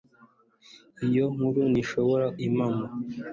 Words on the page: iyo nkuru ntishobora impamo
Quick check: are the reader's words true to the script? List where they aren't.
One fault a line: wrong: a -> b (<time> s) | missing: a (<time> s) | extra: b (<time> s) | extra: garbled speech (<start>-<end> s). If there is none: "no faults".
no faults